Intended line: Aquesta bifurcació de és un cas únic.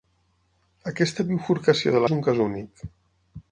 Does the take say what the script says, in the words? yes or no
yes